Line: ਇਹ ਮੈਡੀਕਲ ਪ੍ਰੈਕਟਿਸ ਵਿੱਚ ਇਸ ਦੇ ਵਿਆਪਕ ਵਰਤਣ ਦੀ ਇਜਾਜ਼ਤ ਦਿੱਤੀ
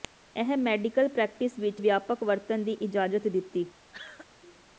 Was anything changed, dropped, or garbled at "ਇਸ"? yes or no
yes